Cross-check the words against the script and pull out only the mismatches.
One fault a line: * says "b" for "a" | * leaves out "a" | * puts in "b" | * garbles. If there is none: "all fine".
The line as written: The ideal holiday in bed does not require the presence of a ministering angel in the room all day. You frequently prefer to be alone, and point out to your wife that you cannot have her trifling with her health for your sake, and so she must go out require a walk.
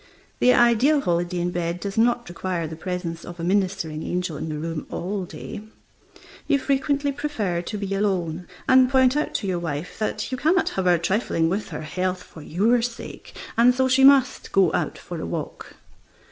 * says "for" for "require"